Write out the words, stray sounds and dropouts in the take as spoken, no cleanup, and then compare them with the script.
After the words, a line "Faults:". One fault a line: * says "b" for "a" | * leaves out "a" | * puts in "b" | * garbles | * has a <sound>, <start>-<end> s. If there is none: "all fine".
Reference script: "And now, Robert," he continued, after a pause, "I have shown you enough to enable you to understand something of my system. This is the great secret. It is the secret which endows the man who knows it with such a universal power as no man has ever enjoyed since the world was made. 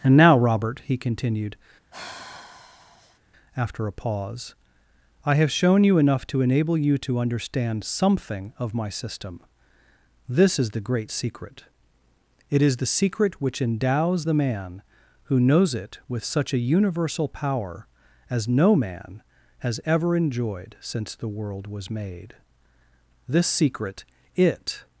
"And now, Robert," he continued, after a pause, "I have shown you enough to enable you to understand something of my system. This is the great secret. It is the secret which endows the man who knows it with such a universal power as no man has ever enjoyed since the world was made. This secret it
Faults:
* has a sigh, 1.9-3.2 s
* puts in "This secret it"